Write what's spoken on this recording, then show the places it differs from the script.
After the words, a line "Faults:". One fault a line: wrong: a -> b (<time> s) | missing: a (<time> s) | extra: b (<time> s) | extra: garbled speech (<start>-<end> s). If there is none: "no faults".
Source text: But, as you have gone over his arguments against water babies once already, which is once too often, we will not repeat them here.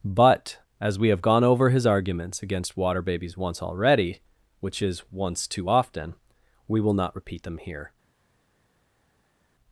But, as we have gone over his arguments against water babies once already, which is once too often, we will not repeat them here.
Faults:
wrong: you -> we (1.0 s)